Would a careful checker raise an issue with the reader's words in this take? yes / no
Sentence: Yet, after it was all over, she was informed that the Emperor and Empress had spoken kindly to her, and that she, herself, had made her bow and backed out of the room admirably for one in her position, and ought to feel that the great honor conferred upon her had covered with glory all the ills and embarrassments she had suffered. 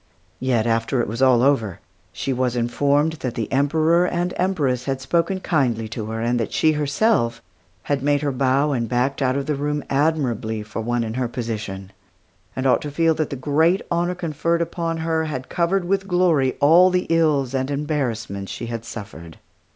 no